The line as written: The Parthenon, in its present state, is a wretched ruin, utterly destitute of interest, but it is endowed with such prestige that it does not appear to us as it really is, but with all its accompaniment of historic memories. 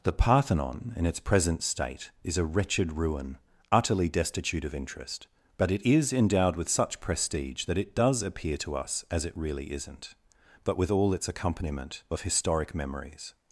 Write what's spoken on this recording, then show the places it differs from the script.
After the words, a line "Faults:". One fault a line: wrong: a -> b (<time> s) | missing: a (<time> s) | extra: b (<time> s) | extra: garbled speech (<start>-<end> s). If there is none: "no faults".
The Parthenon, in its present state, is a wretched ruin, utterly destitute of interest, but it is endowed with such prestige that it does appear to us as it really isn't, but with all its accompaniment of historic memories.
Faults:
missing: not (8.2 s)
wrong: is -> isn't (9.7 s)